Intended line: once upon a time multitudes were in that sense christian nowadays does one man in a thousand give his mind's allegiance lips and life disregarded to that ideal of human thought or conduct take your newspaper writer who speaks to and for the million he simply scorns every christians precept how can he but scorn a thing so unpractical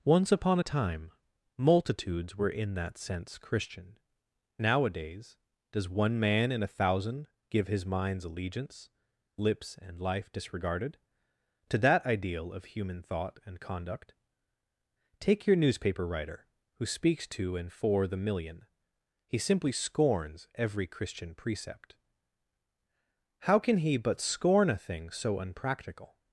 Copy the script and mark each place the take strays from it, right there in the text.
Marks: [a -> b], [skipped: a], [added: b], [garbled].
once upon a time multitudes were in that sense christian nowadays does one man in a thousand give his mind's allegiance lips and life disregarded to that ideal of human thought [or -> and] conduct take your newspaper writer who speaks to and for the million he simply scorns every [christians -> christian] precept how can he but scorn a thing so unpractical